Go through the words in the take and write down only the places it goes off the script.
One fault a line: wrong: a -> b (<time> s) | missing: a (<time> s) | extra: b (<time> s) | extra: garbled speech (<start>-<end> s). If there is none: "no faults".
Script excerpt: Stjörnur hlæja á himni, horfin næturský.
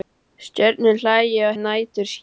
missing: himni horfin (1.6 s)